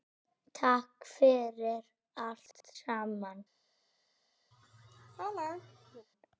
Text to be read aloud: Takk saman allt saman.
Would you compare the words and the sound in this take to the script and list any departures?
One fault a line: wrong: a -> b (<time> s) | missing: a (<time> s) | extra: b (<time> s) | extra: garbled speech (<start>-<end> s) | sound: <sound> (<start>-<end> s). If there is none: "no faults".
wrong: saman -> fyrir (1.1 s)
sound: laugh (4.5-6.1 s)